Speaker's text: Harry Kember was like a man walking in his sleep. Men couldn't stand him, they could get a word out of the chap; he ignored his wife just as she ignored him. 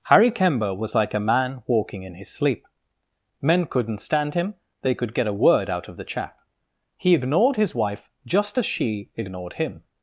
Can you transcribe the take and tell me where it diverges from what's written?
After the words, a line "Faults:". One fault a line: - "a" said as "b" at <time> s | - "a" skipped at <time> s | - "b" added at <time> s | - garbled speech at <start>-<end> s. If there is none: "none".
Harry Kember was like a man walking in his sleep. Men couldn't stand him, they could get a word out of the chap; he ignored his wife just as she ignored him.
Faults:
none